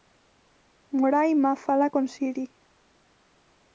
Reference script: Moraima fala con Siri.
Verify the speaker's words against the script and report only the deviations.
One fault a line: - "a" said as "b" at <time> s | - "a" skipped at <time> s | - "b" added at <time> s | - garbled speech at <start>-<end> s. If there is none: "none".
none